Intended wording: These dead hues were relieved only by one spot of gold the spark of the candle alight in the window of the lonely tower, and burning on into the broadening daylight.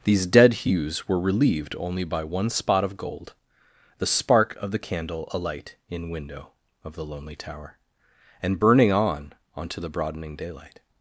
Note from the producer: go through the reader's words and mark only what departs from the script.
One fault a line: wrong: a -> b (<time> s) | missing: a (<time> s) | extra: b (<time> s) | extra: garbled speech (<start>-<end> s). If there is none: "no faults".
missing: the (6.1 s)
wrong: into -> onto (9.5 s)